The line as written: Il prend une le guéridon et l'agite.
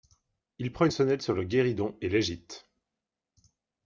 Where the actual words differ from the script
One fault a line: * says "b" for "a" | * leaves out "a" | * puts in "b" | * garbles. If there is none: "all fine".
* puts in "sonnette sur"